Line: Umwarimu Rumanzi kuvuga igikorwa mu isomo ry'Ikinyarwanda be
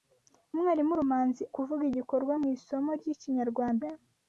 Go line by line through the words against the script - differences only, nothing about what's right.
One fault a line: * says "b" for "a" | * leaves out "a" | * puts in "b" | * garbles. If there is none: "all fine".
all fine